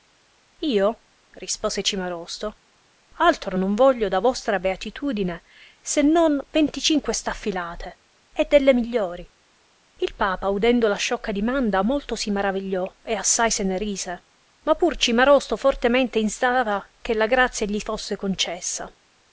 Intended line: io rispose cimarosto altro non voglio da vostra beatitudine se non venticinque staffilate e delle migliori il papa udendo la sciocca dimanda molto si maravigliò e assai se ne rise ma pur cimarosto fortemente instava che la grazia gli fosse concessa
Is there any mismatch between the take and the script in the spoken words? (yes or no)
no